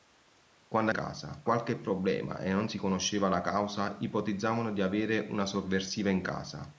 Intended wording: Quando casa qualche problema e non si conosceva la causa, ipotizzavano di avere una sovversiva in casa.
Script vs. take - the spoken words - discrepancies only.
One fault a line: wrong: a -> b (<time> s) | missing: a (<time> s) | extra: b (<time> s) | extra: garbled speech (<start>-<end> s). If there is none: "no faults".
no faults